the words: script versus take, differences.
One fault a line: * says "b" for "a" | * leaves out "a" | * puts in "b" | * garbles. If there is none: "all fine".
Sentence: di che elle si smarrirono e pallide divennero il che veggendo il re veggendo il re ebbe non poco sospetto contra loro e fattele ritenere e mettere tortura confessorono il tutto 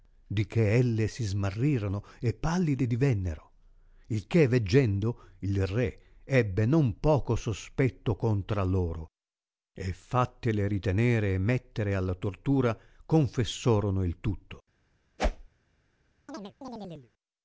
* leaves out "veggendo il re"
* puts in "alla"